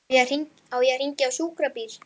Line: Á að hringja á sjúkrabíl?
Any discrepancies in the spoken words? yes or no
yes